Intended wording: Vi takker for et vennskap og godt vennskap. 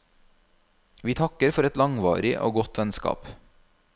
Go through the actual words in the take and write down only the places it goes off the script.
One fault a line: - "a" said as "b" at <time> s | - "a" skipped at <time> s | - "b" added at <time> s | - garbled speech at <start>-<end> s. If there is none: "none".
- "vennskap" said as "langvarig" at 1.8 s